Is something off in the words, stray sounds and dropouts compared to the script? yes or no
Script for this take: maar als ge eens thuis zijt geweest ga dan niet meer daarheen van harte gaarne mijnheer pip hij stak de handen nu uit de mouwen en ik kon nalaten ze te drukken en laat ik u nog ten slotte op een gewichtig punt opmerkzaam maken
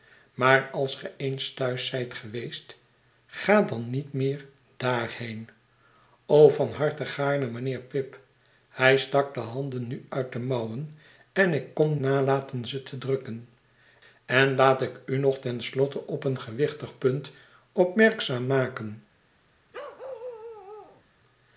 yes